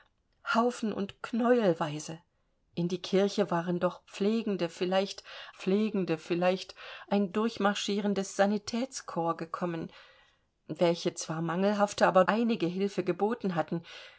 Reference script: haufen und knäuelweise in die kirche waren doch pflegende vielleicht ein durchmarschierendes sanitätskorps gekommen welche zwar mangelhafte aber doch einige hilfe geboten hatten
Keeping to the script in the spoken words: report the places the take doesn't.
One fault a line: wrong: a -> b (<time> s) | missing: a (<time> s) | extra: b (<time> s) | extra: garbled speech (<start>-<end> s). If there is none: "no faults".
extra: pflegende vielleicht (5.5 s)
missing: doch (12.2 s)